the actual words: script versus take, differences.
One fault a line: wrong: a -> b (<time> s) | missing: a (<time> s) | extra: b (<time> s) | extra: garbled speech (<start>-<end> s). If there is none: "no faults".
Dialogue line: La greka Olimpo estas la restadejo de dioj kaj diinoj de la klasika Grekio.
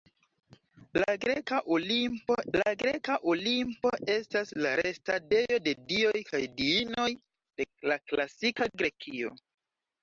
extra: la greka Olimpo (2.6 s)